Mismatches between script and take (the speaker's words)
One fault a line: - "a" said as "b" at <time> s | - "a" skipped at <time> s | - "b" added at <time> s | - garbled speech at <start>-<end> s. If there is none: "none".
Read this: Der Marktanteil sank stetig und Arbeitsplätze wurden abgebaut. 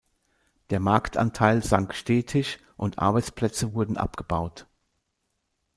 none